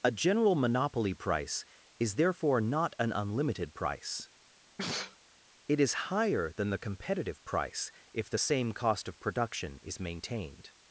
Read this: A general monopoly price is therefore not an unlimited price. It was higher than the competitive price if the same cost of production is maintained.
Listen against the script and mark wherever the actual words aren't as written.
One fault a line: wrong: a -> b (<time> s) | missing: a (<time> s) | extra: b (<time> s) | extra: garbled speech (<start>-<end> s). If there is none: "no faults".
wrong: was -> is (5.8 s)